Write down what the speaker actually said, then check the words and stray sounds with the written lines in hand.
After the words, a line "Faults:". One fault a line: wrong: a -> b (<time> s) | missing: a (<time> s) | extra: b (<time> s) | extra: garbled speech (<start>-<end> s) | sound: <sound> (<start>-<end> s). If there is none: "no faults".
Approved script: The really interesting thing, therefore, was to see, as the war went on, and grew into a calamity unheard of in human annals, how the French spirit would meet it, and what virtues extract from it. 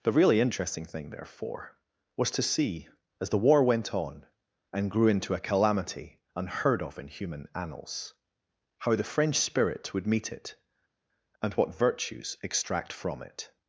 The really interesting thing, therefore, was to see, as the war went on, and grew into a calamity unheard of in human annals, how the French spirit would meet it, and what virtues extract from it.
Faults:
no faults